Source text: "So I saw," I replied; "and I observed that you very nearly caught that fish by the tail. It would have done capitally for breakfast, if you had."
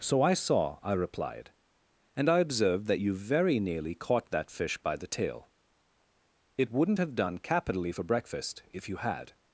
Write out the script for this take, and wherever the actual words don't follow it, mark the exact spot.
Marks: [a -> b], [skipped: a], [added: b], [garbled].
"So I saw," I replied; "and I observed that you very nearly caught that fish by the tail. It [would -> wouldn't] have done capitally for breakfast, if you had."